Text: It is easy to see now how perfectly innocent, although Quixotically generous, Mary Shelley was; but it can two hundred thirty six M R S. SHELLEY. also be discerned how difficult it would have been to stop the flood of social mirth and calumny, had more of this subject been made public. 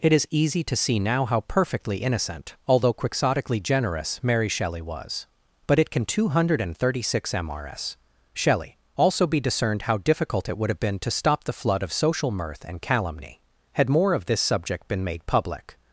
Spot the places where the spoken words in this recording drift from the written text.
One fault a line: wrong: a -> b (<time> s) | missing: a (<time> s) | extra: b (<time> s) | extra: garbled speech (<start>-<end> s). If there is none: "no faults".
no faults